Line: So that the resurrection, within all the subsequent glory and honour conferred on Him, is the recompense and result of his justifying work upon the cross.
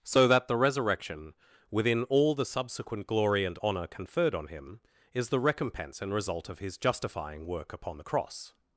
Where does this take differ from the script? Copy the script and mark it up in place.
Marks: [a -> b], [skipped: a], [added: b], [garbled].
So that the resurrection, within all the subsequent glory and honour conferred on Him, is the recompense and result of his justifying work upon the cross.